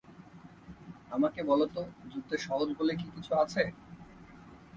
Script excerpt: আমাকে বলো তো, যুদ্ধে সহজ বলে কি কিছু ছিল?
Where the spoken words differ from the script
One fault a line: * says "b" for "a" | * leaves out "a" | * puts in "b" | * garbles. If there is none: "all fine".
* says "আছে" for "ছিল"